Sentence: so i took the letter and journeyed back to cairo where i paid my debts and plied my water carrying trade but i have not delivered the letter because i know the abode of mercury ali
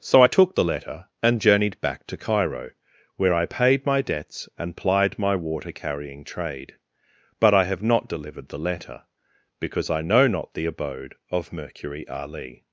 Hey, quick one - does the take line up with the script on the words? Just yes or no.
no